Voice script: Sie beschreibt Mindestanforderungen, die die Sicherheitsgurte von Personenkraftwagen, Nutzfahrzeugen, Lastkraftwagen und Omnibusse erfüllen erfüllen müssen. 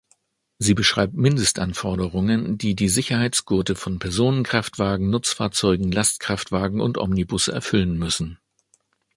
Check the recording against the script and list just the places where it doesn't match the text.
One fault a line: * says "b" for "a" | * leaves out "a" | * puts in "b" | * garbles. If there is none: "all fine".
* leaves out "erfüllen"